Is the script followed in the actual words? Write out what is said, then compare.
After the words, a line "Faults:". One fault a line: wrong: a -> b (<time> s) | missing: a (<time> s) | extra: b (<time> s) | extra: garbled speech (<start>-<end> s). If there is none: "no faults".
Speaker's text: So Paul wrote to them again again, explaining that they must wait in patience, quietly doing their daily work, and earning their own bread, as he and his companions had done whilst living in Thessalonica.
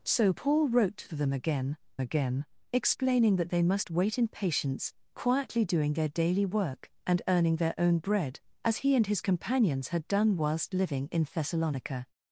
So Paul wrote to them again again, explaining that they must wait in patience, quietly doing their daily work, and earning their own bread, as he and his companions had done whilst living in Thessalonica.
Faults:
no faults